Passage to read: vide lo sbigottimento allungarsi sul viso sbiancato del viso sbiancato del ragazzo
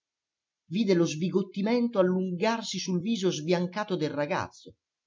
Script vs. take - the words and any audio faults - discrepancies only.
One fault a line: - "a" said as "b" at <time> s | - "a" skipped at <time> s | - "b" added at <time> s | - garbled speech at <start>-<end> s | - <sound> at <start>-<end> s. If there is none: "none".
- "viso sbiancato del" skipped at 4.1 s